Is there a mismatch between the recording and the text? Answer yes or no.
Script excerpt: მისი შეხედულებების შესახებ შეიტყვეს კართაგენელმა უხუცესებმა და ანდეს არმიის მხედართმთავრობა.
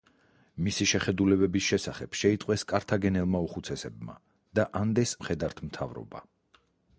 yes